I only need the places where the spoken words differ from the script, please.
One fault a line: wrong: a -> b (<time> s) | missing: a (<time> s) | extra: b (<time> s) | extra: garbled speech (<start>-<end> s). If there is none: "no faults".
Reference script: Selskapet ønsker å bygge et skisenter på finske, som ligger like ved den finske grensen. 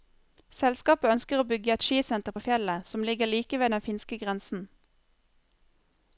wrong: finske -> fjellet (2.5 s)